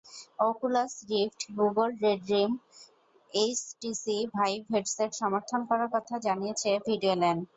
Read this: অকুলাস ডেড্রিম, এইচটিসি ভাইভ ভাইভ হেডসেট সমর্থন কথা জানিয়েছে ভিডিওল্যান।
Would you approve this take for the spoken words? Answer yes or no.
no